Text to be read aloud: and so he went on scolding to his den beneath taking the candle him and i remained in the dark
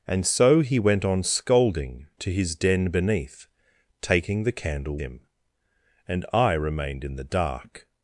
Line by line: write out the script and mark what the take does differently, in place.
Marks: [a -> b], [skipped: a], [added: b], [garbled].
and so he went on scolding to his den beneath taking the candle him and i remained in the dark